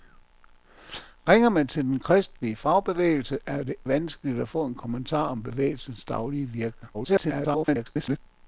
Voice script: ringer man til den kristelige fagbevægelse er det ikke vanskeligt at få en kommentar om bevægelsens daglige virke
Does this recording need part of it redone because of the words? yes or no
yes